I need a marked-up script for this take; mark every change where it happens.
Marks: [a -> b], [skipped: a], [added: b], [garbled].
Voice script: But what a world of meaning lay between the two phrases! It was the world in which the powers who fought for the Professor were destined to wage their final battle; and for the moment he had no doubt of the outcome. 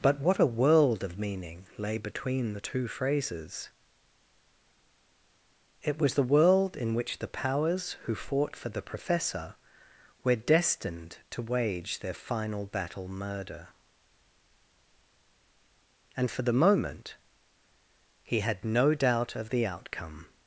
But what a world of meaning lay between the two phrases! It was the world in which the powers who fought for the Professor were destined to wage their final battle; [added: murder] and for the moment he had no doubt of the outcome.